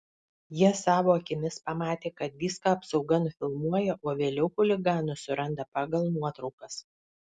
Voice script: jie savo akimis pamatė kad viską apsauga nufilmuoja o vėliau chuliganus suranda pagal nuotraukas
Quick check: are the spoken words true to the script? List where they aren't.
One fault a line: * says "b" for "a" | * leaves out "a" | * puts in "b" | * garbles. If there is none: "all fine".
all fine